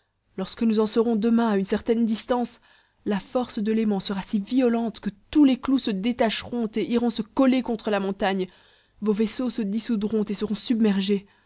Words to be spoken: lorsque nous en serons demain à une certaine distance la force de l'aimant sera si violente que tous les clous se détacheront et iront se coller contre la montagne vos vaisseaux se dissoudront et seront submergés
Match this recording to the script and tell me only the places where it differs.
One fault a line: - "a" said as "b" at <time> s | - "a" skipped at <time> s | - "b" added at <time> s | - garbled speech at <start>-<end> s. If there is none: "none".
none